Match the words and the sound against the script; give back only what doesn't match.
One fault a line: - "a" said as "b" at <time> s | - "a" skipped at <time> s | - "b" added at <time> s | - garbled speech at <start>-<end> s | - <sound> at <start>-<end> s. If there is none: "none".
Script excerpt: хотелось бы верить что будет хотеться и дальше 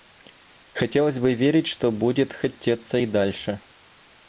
none